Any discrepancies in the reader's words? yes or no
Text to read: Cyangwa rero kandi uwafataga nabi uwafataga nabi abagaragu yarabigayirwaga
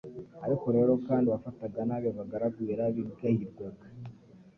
yes